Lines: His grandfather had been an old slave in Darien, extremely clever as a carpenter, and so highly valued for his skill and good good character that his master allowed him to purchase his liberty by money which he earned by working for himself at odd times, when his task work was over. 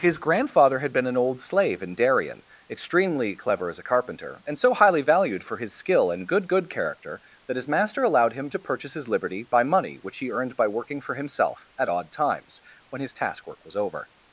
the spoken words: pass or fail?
pass